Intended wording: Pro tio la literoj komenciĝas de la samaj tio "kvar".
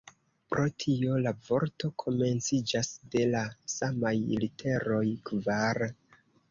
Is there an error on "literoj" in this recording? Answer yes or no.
yes